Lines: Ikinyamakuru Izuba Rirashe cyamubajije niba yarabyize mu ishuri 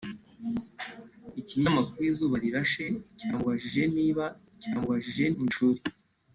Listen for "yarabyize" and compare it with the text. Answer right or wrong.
wrong